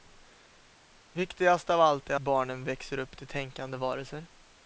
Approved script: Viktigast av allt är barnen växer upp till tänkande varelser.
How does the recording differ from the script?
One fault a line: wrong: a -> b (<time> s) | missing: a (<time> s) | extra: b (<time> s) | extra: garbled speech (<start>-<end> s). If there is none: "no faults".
no faults